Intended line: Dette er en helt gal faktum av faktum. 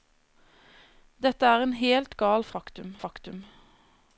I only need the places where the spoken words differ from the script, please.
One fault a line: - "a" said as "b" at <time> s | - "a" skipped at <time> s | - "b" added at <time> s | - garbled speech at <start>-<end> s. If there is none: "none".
none